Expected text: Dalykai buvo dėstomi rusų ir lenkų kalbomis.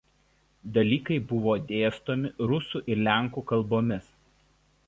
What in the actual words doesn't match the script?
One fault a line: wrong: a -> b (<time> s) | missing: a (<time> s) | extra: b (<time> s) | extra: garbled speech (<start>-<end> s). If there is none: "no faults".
no faults